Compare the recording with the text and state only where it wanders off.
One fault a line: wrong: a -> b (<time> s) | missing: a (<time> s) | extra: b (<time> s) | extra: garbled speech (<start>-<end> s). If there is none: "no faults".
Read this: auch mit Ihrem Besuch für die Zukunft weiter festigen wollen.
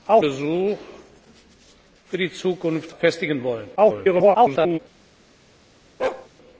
missing: mit Ihrem (0.2 s)
missing: weiter (2.9 s)
extra: garbled speech (3.8-4.8 s)